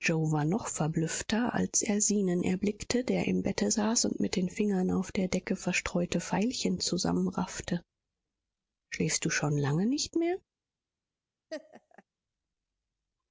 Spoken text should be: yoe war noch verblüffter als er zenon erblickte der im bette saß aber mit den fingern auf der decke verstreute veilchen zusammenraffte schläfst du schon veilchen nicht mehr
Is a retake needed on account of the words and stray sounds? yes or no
yes